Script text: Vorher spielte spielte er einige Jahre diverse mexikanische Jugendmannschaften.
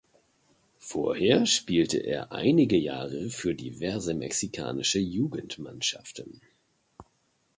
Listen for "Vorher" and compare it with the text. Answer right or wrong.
right